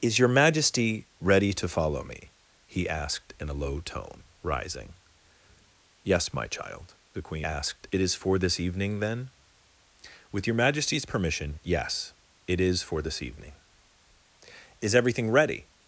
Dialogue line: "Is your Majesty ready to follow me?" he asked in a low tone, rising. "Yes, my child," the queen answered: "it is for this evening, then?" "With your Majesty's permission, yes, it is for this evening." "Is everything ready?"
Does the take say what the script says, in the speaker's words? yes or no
no